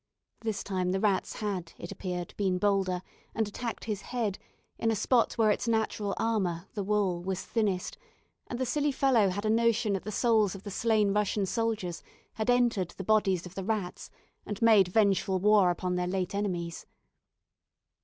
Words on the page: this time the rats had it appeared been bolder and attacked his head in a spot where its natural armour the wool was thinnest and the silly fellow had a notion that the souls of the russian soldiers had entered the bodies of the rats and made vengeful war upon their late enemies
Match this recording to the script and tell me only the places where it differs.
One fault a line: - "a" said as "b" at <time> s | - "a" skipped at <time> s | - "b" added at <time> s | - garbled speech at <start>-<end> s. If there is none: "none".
- "slain" added at 10.7 s